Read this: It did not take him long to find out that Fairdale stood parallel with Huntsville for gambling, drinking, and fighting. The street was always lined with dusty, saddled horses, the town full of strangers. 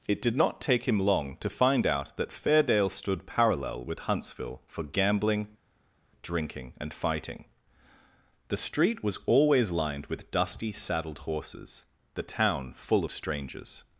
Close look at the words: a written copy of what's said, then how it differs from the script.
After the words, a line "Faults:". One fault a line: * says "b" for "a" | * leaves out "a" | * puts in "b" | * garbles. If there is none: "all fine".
It did not take him long to find out that Fairdale stood parallel with Huntsville for gambling, drinking, and fighting. The street was always lined with dusty, saddled horses, the town full of strangers.
Faults:
all fine